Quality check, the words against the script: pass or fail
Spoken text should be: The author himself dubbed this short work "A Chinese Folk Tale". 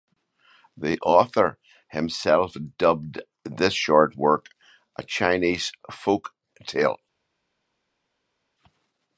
pass